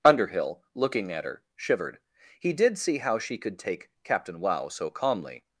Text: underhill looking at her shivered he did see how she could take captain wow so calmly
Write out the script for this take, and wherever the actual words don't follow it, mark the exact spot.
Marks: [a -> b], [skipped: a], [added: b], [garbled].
underhill looking at her shivered he did see how she could take captain wow so calmly